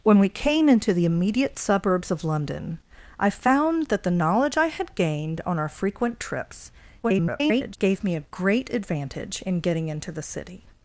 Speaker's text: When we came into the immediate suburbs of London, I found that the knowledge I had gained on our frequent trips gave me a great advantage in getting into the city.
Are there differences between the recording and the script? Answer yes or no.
yes